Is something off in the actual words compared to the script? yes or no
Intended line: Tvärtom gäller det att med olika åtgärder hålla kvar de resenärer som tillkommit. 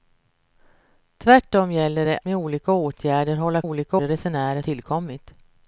yes